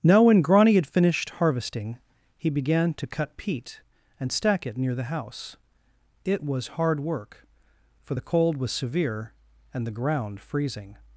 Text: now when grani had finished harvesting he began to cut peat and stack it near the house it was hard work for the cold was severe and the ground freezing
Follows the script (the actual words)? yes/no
yes